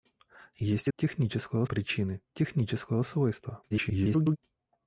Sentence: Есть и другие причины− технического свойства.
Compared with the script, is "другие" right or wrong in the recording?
wrong